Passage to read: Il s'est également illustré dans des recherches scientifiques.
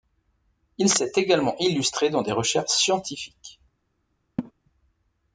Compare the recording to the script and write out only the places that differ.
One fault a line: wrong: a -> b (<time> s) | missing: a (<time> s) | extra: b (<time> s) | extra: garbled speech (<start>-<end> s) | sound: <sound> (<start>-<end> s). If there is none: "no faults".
sound: laugh (4.4-4.5 s)